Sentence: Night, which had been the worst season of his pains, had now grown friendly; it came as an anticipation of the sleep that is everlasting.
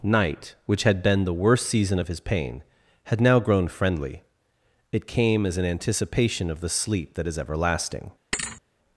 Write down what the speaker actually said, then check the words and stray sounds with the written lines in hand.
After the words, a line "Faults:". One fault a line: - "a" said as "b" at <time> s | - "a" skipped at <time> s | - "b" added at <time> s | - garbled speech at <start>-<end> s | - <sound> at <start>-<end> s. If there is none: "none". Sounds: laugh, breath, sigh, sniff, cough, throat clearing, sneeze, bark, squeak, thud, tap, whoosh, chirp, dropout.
Night, which had been the worst season of his pain, had now grown friendly; it came as an anticipation of the sleep that is everlasting.
Faults:
- "pains" said as "pain" at 2.2 s
- thud at 8.3-8.6 s